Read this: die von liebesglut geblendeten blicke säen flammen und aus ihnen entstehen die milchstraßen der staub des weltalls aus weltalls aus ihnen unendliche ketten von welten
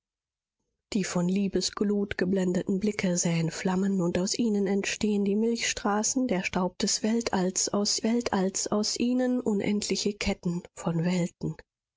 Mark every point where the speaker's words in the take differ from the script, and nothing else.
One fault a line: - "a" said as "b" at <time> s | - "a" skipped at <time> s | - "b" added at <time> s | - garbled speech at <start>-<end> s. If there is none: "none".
none